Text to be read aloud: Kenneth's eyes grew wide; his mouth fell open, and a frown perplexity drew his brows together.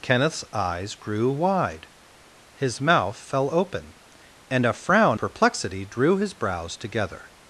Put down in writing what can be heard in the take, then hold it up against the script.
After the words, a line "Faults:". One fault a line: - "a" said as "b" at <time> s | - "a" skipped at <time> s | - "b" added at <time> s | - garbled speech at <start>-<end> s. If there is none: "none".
Kenneth's eyes grew wide; his mouth fell open, and a frown perplexity drew his brows together.
Faults:
none